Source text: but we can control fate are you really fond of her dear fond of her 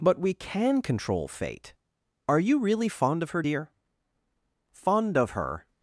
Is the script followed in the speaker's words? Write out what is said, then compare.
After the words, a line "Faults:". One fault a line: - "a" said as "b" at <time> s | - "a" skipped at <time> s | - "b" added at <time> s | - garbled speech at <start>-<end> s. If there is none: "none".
but we can control fate are you really fond of her dear fond of her
Faults:
none